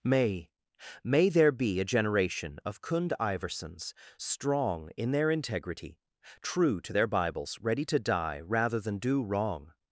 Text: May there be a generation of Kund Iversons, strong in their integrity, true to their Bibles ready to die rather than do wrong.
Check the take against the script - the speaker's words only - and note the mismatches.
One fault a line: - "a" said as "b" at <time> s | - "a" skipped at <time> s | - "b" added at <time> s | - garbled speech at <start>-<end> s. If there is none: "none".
- "may" added at 1.0 s